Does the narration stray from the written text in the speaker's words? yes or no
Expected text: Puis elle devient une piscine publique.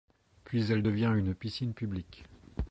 no